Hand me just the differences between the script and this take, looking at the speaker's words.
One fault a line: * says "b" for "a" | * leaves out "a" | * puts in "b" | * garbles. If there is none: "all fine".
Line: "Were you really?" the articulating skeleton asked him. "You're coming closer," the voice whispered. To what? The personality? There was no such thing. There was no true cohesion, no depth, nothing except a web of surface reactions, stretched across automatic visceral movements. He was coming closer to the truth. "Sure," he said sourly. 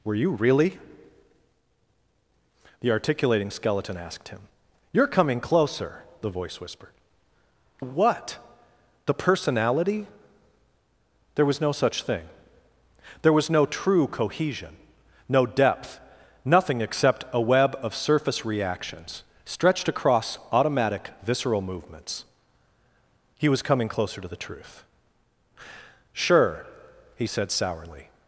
* leaves out "To"